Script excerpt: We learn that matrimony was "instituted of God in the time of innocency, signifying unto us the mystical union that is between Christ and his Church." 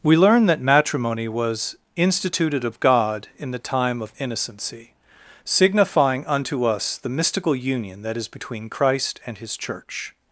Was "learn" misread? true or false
false